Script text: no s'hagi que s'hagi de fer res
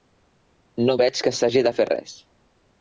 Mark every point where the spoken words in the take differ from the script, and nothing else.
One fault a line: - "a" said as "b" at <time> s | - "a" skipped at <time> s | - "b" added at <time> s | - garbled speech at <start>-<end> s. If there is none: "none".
- "s'hagi" said as "veig" at 1.0 s